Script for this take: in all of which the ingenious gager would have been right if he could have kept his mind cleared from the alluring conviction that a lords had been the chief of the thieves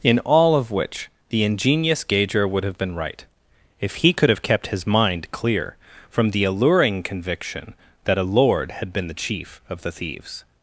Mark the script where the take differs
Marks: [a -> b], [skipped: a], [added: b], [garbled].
in all of which the ingenious gager would have been right if he could have kept his mind [cleared -> clear] from the alluring conviction that a [lords -> lord] had been the chief of the thieves